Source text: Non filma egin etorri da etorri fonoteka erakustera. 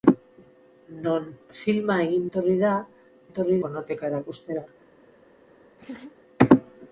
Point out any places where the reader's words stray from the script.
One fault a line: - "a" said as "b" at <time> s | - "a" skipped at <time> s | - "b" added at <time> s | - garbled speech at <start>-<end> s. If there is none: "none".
none